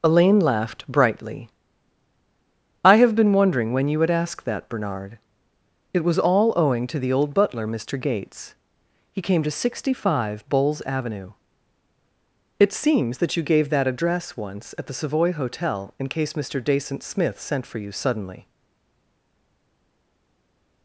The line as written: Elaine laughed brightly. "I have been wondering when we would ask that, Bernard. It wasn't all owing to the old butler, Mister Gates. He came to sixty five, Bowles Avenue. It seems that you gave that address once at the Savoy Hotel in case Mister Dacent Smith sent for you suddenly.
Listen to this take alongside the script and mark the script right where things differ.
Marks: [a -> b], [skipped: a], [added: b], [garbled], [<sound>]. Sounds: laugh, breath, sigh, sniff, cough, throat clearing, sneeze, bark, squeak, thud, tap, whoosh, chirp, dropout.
Elaine laughed brightly. "I have been wondering when [we -> you] would ask that, Bernard. It [wasn't -> was] all owing to the old butler, Mister Gates. He came to sixty five, Bowles Avenue. It seems that you gave that address once at the Savoy Hotel in case Mister Dacent Smith sent for you suddenly.